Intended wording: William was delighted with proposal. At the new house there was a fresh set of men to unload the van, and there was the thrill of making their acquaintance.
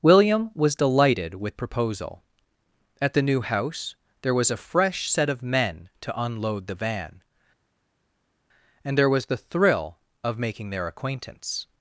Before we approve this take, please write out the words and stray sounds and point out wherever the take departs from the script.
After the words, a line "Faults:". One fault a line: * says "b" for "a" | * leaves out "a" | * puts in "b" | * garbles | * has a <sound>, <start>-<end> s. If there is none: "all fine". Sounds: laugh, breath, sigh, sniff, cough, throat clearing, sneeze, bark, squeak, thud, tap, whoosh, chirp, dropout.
William was delighted with proposal. At the new house there was a fresh set of men to unload the van, and there was the thrill of making their acquaintance.
Faults:
all fine